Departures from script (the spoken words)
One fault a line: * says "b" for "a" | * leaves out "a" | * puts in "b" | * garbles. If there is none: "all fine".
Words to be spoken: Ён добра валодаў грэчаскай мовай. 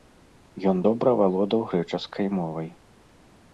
all fine